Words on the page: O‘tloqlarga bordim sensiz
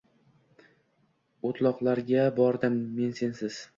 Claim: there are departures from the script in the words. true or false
true